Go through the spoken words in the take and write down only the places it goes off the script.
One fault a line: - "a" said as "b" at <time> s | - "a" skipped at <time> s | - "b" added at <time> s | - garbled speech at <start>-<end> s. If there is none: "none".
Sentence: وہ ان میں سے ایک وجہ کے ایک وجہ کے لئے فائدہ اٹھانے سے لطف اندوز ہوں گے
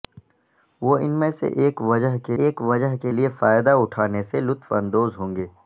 none